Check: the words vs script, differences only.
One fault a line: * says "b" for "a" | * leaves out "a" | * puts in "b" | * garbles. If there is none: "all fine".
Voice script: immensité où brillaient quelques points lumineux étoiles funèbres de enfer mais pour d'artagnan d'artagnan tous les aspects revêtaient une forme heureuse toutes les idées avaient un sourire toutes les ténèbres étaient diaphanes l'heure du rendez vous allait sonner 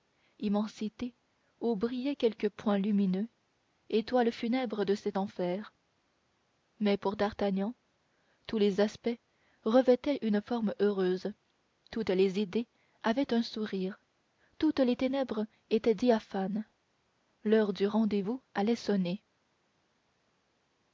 * puts in "cet"
* leaves out "d'artagnan"